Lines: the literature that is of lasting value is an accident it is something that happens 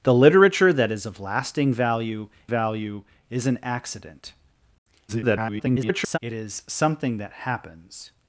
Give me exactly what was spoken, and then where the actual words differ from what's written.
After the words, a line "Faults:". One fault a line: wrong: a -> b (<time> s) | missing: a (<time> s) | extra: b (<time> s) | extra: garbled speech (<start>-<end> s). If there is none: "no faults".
the literature that is of lasting value value is an accident [garbled] it is something that happens
Faults:
extra: value (2.5 s)
extra: garbled speech (5.1-6.2 s)